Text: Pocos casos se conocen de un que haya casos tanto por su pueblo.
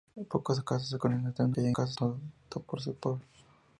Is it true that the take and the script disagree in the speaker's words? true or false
false